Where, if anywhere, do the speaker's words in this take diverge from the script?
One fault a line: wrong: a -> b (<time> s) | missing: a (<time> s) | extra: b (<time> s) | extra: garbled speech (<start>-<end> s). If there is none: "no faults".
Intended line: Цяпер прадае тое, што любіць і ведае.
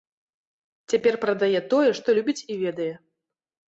no faults